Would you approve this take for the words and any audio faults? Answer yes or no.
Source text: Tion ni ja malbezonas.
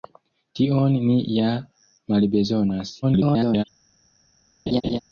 no